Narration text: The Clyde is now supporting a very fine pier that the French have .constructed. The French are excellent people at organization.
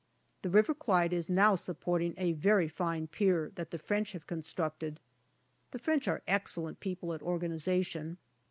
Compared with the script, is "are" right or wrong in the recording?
right